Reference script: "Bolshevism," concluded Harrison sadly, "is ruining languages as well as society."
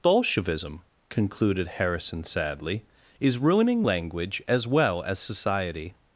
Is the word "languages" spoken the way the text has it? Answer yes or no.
no